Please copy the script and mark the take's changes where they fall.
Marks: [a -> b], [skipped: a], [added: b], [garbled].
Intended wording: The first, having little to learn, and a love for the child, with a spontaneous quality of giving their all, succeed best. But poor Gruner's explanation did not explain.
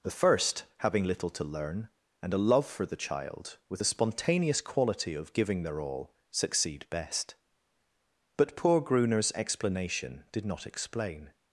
The first, having little to learn, and a love for the child, with a spontaneous quality of giving their all, succeed best. But poor Gruner's explanation did not explain.